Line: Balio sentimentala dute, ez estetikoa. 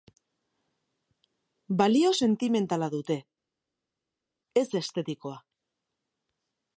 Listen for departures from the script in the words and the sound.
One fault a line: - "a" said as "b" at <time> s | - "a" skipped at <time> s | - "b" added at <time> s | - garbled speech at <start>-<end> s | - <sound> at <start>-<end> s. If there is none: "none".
none